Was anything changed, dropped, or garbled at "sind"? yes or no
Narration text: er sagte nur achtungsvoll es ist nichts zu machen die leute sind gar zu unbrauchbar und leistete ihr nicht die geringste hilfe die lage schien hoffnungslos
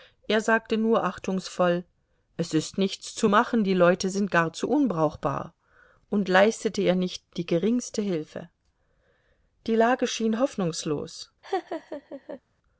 no